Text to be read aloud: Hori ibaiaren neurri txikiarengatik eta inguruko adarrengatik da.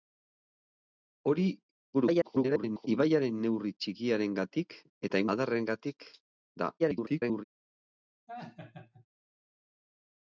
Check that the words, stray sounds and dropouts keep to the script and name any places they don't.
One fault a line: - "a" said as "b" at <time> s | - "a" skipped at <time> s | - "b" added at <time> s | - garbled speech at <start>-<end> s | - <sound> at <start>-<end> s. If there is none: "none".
- garbled speech at 1.9-2.9 s
- "inguruko" skipped at 5.2 s
- garbled speech at 6.8-7.4 s
- laugh at 8.3-9.1 s